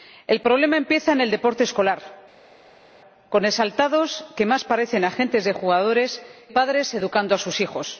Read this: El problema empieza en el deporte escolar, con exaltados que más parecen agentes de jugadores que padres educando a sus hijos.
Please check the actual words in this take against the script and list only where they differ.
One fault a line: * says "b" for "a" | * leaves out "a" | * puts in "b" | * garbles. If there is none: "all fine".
* leaves out "que"